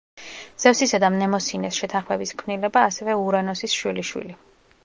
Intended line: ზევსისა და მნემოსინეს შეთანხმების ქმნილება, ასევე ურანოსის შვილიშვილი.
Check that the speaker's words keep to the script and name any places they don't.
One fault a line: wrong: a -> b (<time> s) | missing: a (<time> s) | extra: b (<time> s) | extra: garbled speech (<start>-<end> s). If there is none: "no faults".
no faults